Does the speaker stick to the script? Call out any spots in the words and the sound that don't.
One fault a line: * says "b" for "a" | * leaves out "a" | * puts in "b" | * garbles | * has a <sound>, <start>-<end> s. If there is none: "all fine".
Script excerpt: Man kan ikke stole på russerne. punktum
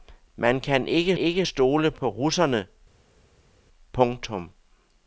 * puts in "ikke"